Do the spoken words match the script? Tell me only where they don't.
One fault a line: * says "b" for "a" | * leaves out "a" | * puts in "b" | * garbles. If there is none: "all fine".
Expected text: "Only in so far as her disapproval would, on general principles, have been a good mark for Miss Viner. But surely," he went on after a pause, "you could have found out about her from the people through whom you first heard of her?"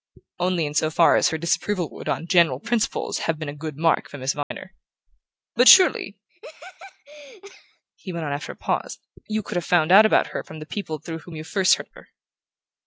all fine